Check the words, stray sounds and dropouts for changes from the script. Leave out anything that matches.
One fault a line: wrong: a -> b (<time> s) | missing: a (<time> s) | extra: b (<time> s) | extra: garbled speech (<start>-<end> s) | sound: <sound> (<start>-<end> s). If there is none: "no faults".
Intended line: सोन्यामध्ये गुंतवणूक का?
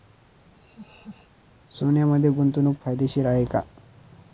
sound: laugh (0.5-1.3 s)
extra: फायदेशीर आहे (2.8 s)